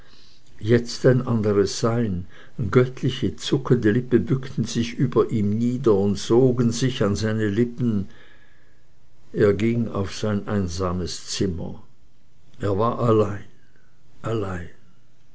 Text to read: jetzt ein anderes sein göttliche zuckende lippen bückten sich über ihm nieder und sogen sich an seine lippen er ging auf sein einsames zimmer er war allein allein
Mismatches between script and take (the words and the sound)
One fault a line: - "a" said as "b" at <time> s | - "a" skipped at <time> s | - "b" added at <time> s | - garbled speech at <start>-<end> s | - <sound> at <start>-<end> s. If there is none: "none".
none